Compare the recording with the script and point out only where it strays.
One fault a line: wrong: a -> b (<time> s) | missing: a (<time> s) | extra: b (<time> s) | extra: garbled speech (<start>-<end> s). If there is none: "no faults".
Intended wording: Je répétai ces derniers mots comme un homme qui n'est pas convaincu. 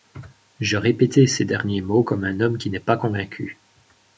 no faults